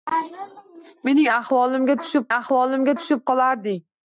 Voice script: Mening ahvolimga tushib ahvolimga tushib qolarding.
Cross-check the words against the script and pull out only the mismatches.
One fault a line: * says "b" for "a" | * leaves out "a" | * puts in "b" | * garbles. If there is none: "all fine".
all fine